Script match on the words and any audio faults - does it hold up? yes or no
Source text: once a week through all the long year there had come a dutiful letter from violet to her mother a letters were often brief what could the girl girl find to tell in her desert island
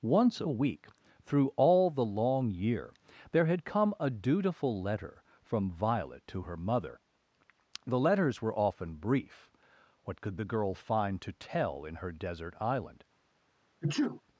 no